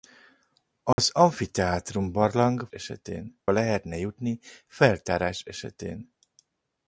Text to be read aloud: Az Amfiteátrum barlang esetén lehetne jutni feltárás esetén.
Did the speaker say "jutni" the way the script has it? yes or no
yes